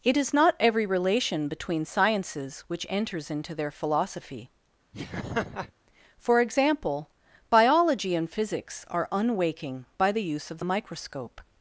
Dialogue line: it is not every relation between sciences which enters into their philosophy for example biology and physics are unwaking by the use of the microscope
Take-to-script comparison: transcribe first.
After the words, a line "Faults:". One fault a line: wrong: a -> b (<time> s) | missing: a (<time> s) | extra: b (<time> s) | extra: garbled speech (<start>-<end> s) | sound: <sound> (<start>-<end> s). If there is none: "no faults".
it is not every relation between sciences which enters into their philosophy for example biology and physics are unwaking by the use of the microscope
Faults:
sound: laugh (4.9-5.7 s)